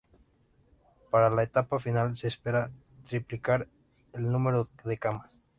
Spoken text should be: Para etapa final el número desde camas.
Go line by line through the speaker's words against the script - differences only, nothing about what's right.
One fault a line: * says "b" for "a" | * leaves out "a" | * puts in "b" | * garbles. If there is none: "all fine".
* puts in "la"
* puts in "se espera triplicar"
* says "de" for "desde"